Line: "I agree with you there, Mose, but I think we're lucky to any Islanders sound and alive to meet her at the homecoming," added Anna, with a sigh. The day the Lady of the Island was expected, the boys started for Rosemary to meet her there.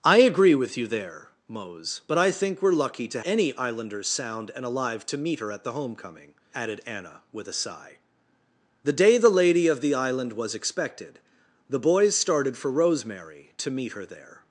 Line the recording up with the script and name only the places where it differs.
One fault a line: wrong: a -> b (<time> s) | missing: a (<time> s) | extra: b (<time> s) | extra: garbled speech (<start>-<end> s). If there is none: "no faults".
no faults